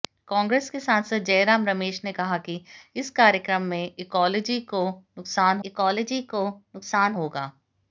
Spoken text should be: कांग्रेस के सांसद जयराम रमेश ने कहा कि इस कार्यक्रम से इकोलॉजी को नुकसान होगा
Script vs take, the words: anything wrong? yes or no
yes